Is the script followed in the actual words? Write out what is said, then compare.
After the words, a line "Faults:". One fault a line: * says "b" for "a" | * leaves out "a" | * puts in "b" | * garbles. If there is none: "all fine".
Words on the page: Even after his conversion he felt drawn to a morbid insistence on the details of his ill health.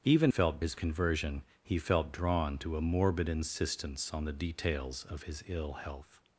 Even felt his conversion he felt drawn to a morbid insistence on the details of his ill health.
Faults:
* says "felt" for "after"